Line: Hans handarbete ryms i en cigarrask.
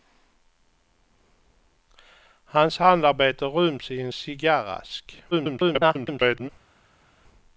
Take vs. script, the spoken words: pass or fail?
fail